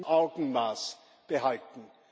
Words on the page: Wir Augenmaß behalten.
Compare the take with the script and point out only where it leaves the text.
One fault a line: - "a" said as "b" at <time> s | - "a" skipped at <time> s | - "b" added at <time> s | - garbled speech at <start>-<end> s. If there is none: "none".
none